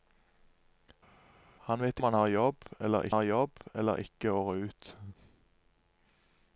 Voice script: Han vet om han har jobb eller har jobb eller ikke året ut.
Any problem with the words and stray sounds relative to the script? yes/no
no